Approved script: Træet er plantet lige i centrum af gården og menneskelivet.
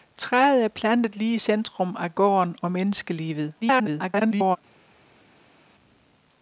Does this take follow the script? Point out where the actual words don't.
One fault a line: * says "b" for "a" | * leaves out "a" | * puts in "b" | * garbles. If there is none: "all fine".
* garbles